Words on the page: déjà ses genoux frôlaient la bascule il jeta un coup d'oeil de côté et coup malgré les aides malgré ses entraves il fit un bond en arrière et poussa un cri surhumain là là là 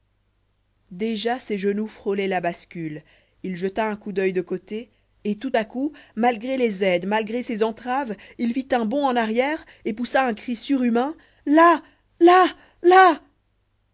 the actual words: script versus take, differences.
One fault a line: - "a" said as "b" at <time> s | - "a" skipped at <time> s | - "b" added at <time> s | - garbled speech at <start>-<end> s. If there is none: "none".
- "tout à" added at 5.4 s